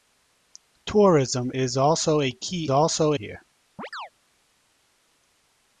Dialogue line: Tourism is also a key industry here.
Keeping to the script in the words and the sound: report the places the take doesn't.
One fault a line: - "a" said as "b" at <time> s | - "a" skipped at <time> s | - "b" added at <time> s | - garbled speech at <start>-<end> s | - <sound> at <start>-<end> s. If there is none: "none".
- "industry" said as "also" at 2.7 s
- chirp at 3.8-4.1 s